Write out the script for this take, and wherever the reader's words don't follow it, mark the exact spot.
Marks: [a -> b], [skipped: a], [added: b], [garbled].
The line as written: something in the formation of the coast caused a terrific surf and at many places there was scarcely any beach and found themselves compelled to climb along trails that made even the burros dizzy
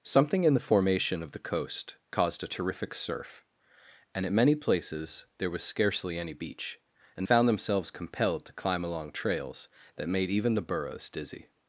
something in the formation of the coast caused a terrific surf and at many places there was scarcely any beach and found themselves compelled to climb along trails that made even the burros dizzy